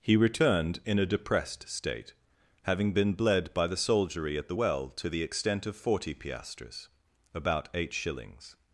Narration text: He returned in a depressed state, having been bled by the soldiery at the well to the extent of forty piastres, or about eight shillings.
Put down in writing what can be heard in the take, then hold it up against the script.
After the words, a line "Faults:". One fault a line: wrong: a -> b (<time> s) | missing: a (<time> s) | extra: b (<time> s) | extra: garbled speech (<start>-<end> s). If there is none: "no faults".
He returned in a depressed state, having been bled by the soldiery at the well to the extent of forty piastres, about eight shillings.
Faults:
missing: or (6.9 s)